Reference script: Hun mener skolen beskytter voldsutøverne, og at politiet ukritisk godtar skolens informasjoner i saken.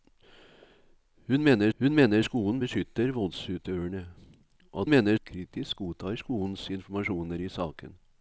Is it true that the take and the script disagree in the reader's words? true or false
true